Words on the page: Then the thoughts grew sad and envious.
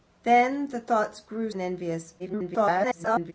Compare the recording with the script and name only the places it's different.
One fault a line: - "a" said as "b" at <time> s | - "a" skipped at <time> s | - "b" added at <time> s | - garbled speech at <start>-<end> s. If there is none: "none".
- "sad" skipped at 1.5 s
- garbled speech at 2.2-3.3 s